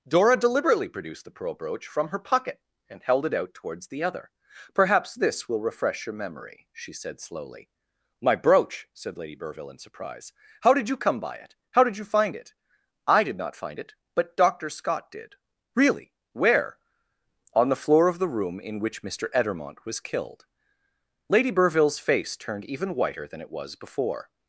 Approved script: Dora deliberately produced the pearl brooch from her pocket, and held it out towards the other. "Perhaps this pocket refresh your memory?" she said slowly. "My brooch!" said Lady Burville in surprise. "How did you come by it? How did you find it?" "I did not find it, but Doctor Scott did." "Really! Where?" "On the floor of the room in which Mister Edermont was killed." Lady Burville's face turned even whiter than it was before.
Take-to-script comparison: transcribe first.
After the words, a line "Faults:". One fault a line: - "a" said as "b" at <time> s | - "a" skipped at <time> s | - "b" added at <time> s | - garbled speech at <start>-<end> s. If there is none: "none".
Dora deliberately produced the pearl brooch from her pocket, and held it out towards the other. "Perhaps this will refresh your memory?" she said slowly. "My brooch!" said Lady Burville in surprise. "How did you come by it? How did you find it?" "I did not find it, but Doctor Scott did." "Really! Where?" "On the floor of the room in which Mister Edermont was killed." Lady Burville's face turned even whiter than it was before.
Faults:
- "pocket" said as "will" at 5.5 s